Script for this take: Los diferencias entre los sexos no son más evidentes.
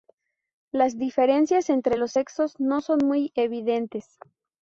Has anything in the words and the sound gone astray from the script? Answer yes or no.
yes